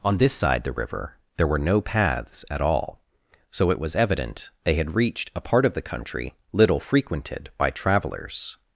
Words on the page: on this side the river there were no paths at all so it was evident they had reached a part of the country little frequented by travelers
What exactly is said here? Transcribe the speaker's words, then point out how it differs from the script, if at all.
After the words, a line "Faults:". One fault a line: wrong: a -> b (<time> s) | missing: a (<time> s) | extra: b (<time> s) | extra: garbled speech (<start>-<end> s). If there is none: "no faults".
on this side the river there were no paths at all so it was evident they had reached a part of the country little frequented by travelers
Faults:
no faults